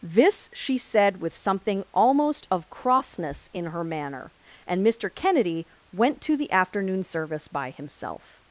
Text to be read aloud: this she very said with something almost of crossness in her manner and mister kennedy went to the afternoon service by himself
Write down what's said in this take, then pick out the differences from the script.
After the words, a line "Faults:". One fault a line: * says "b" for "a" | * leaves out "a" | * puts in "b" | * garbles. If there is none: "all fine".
this she said with something almost of crossness in her manner and mister kennedy went to the afternoon service by himself
Faults:
* leaves out "very"